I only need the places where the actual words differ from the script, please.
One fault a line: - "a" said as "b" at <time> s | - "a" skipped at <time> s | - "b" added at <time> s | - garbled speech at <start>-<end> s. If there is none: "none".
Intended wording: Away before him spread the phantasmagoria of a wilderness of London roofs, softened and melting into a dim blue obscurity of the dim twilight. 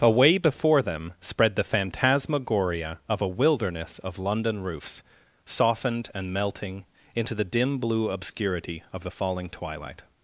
- "him" said as "them" at 0.8 s
- "a" said as "the" at 7.3 s
- "dim" said as "falling" at 9.1 s